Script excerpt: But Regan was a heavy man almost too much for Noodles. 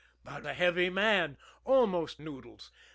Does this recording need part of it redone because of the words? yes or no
yes